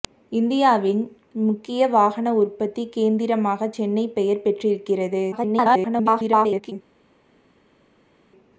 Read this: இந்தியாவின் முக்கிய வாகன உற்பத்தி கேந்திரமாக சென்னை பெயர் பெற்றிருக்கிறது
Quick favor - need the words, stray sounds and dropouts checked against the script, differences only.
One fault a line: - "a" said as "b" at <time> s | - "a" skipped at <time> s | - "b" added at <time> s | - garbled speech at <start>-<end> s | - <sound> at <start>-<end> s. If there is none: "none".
- garbled speech at 5.3-6.7 s